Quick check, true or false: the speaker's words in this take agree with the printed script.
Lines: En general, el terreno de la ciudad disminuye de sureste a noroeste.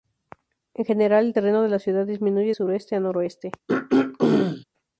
false